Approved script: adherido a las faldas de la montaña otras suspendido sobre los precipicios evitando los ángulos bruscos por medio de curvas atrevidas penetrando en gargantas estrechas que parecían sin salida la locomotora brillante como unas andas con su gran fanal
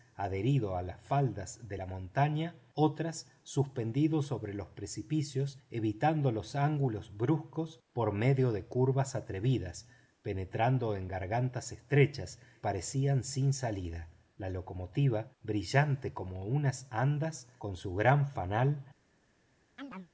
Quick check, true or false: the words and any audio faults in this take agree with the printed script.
false